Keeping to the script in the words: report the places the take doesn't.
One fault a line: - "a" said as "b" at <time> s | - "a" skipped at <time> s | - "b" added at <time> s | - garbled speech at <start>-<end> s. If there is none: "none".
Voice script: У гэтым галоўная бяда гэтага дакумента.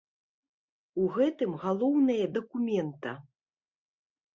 - "бяда гэтага" skipped at 2.2 s